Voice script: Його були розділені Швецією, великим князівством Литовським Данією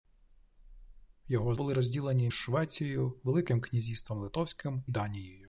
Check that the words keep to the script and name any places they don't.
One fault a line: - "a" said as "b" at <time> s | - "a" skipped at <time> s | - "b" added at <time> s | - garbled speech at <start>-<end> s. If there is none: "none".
none